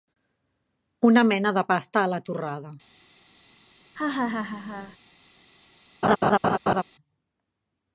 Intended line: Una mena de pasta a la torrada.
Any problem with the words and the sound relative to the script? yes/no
yes